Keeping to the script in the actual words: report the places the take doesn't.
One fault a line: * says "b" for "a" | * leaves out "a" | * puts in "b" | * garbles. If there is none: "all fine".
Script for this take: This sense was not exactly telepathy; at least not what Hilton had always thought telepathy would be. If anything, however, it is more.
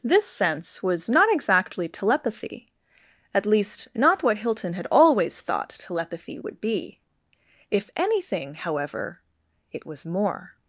* says "was" for "is"